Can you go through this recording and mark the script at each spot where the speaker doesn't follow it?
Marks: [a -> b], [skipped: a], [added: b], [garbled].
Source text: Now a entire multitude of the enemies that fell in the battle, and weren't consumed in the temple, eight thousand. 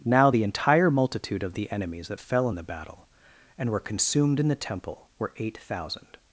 Now [a -> the] entire multitude of the enemies that fell in the battle, and [weren't -> were] consumed in the temple, [added: were] eight thousand.